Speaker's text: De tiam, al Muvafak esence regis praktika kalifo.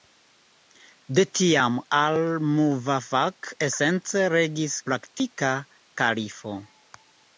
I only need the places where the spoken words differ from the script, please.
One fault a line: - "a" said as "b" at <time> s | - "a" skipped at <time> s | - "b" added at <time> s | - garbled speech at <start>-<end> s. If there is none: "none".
none